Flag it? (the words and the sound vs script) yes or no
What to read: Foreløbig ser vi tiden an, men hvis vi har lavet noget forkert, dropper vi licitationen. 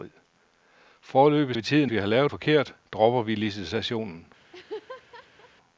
yes